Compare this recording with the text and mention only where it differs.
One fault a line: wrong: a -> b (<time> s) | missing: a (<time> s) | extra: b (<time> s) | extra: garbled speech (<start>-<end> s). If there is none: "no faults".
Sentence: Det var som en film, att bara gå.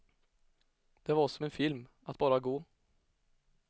no faults